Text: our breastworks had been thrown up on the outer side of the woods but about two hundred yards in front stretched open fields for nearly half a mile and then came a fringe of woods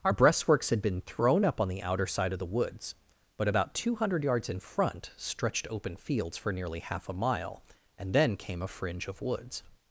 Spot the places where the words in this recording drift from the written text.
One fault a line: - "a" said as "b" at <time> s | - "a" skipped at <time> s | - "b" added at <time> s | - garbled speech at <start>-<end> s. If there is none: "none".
none